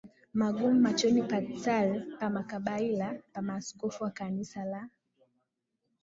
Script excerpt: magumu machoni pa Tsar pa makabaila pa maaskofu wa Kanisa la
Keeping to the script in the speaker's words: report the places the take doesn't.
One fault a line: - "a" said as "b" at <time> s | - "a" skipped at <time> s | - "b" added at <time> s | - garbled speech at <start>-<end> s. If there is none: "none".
none